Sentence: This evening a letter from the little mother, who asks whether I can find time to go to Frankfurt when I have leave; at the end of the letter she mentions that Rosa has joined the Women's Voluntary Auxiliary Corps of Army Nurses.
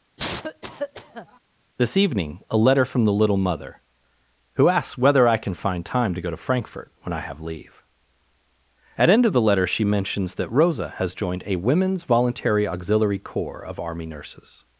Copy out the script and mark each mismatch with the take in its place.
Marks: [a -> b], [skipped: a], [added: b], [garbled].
This evening a letter from the little mother, who asks whether I can find time to go to Frankfurt when I have leave; at [skipped: the] end of the letter she mentions that Rosa has joined [the -> a] Women's Voluntary Auxiliary Corps of Army Nurses.